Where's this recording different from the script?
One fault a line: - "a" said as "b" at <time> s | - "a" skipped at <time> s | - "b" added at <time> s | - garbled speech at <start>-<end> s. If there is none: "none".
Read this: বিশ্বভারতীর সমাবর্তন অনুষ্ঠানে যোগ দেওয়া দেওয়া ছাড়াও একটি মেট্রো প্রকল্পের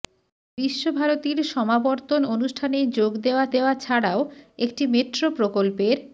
none